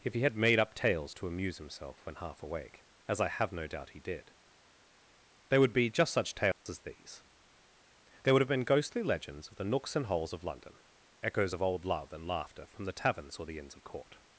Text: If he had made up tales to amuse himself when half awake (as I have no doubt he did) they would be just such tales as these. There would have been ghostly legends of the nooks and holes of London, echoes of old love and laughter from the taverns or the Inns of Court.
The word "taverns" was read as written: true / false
true